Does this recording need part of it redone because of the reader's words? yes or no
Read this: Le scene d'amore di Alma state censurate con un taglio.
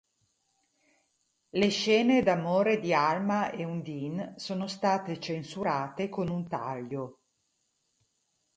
yes